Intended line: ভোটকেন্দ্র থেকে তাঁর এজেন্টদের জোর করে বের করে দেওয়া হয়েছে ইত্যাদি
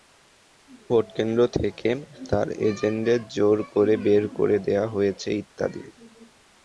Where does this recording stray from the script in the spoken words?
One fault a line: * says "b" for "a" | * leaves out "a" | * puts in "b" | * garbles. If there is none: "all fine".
all fine